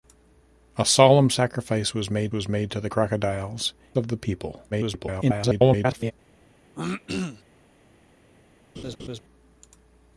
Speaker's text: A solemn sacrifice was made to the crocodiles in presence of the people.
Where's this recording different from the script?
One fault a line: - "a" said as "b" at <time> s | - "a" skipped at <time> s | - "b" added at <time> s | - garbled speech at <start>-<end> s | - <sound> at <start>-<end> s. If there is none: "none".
- "was made" added at 2.3 s
- "in presence" skipped at 3.7 s
- garbled speech at 4.7-6.1 s
- throat clearing at 6.8-7.4 s
- laugh at 8.8-9.2 s